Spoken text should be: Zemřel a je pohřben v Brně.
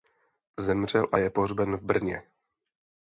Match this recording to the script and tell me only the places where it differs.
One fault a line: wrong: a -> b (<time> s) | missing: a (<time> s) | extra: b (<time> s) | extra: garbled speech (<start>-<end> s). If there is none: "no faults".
no faults